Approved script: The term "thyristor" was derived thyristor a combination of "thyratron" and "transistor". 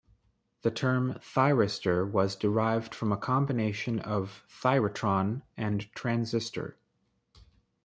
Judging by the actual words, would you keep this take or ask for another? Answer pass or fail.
fail